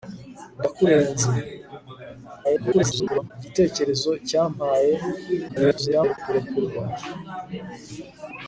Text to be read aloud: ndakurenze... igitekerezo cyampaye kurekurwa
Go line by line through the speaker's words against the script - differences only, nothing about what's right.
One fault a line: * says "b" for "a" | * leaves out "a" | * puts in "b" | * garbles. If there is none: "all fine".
* garbles
* garbles